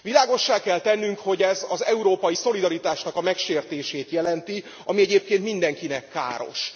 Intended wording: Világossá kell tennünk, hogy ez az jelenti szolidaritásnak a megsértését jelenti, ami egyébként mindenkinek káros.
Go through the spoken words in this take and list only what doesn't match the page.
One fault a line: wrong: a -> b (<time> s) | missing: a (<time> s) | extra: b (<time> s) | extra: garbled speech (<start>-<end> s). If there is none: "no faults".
wrong: jelenti -> európai (1.8 s)